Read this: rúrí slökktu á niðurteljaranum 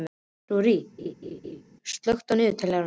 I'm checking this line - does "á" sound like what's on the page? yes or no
yes